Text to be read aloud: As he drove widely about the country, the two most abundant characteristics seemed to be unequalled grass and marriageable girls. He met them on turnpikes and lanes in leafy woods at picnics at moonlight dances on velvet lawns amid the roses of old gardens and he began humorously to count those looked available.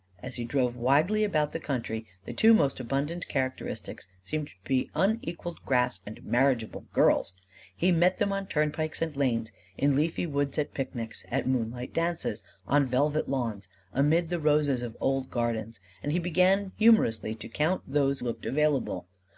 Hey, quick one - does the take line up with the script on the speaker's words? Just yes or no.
yes